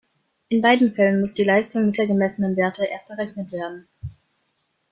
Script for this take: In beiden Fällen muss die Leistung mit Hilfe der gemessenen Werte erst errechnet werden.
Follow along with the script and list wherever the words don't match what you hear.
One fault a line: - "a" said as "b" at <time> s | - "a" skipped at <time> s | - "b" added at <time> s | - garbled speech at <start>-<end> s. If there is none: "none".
- "Hilfe" skipped at 2.0 s